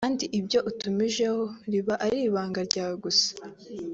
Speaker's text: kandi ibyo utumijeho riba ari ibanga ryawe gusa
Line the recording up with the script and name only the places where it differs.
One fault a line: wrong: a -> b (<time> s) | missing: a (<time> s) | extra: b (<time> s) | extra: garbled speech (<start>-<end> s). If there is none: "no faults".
no faults